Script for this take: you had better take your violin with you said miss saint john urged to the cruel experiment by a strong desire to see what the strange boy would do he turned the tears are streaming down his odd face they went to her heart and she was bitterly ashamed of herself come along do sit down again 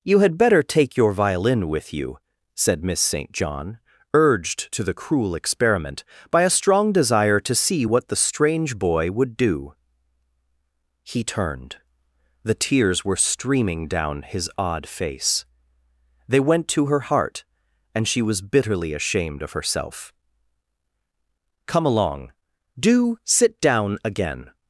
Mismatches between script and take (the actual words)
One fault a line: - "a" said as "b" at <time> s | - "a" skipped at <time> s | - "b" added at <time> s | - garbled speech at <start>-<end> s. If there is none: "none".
- "are" said as "were" at 13.0 s